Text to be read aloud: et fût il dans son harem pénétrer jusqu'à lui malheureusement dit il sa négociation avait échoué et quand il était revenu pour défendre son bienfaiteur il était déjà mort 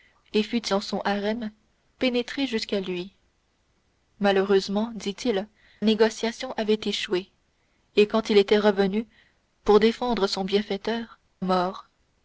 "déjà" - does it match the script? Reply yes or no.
no